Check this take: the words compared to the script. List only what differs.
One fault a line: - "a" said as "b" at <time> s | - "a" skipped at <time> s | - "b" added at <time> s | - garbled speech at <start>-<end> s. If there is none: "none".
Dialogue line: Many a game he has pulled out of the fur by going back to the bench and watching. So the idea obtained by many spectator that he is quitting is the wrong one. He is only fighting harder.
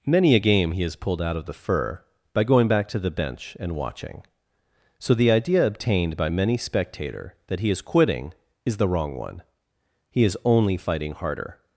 none